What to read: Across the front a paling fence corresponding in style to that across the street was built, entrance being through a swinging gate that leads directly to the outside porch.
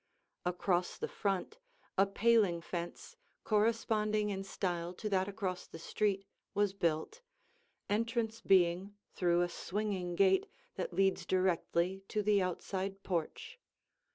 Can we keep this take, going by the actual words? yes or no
yes